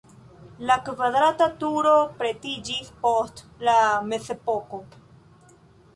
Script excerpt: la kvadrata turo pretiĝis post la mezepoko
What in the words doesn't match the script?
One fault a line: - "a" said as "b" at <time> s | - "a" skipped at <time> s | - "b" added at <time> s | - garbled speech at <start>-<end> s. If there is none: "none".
none